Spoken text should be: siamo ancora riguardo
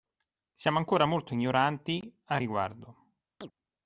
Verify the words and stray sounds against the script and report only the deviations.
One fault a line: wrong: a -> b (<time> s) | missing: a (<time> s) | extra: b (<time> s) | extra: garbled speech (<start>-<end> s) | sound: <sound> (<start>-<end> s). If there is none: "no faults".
extra: molto ignoranti a (1.0 s)
sound: chirp (3.4-3.5 s)